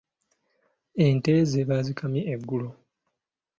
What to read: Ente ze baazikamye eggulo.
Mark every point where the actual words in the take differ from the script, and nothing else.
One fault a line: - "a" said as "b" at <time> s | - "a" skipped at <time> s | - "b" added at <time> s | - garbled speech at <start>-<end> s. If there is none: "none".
none